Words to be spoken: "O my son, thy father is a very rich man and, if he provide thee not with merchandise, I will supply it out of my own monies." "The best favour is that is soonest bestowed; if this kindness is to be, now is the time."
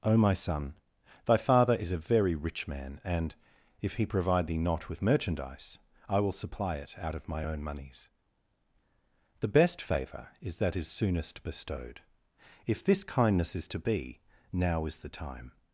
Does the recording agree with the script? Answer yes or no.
yes